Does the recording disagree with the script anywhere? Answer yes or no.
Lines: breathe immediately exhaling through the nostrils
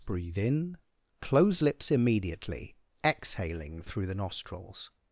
yes